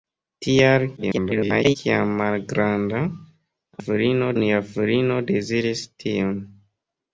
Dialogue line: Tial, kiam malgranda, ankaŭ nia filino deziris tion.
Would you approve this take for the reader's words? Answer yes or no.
no